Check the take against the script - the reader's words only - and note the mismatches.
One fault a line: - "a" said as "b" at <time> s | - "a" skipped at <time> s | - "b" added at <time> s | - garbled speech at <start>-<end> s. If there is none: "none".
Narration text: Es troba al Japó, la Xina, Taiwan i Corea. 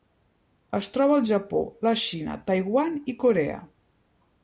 none